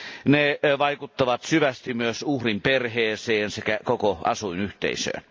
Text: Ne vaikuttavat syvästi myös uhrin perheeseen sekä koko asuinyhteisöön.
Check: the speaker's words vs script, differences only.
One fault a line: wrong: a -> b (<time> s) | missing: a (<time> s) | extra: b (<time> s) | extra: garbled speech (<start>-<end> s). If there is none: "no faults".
no faults